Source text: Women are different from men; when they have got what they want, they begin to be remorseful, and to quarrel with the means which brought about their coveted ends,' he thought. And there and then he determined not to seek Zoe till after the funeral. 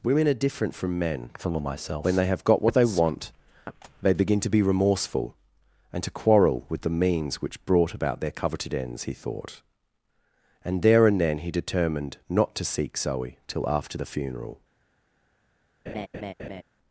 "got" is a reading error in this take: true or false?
false